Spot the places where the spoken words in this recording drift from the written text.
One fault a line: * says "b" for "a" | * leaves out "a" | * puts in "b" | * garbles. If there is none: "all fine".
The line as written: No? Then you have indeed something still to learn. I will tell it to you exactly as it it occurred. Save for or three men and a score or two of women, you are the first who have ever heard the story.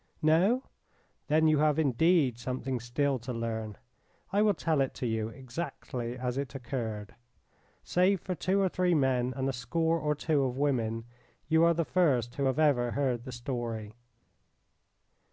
* leaves out "it"
* puts in "two"